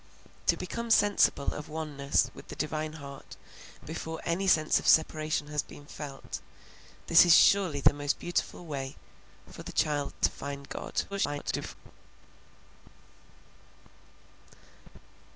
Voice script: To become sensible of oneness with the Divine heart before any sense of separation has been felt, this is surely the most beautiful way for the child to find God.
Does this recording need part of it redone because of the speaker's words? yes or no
yes